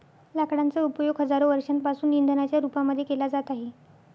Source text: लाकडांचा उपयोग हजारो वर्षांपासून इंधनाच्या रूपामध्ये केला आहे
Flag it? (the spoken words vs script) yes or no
yes